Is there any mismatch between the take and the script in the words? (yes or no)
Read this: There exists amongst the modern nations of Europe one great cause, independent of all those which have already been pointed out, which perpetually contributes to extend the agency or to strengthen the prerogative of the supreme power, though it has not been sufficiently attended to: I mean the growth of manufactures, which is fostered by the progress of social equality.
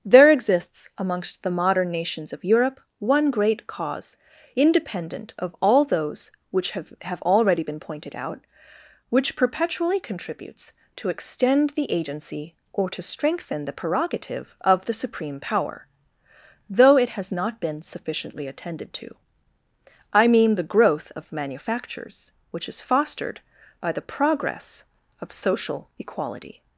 yes